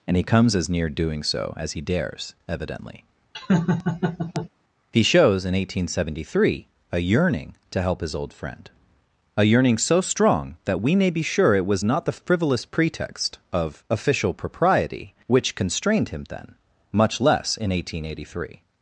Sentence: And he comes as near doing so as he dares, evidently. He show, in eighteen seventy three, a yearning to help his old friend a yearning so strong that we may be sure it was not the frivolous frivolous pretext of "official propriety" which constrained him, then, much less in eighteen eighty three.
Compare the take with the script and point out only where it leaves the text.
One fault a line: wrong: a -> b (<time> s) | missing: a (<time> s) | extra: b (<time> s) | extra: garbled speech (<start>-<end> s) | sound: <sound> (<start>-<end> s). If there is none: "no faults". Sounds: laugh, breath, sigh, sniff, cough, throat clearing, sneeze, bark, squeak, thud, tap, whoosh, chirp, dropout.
sound: laugh (3.3-4.5 s)
wrong: show -> shows (5.0 s)
missing: frivolous (12.7 s)